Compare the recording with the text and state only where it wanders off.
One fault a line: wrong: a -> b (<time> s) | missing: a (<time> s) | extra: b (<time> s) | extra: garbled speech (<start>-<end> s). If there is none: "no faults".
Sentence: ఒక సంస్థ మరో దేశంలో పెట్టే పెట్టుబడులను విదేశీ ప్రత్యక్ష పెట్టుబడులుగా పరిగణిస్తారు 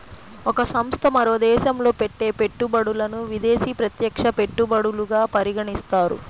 no faults